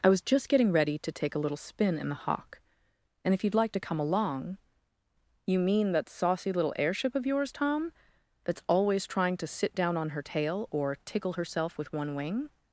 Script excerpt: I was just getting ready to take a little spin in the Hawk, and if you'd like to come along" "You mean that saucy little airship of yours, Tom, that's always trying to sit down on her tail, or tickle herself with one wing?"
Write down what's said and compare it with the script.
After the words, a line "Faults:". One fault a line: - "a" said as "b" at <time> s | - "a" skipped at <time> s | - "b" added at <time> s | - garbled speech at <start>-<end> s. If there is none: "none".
I was just getting ready to take a little spin in the Hawk, and if you'd like to come along" "You mean that saucy little airship of yours, Tom, that's always trying to sit down on her tail, or tickle herself with one wing?"
Faults:
none